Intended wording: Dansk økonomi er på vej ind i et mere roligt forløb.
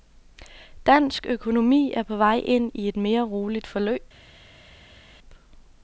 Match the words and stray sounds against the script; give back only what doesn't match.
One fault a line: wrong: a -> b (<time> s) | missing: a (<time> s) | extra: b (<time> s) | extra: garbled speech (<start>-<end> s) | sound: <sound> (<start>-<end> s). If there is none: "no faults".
no faults